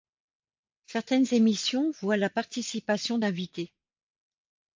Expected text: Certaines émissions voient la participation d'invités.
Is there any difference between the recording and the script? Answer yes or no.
no